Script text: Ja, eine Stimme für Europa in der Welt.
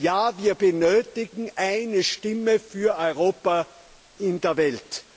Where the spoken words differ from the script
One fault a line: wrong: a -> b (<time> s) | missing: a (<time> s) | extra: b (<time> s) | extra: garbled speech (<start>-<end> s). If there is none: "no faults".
extra: wir benötigen (0.4 s)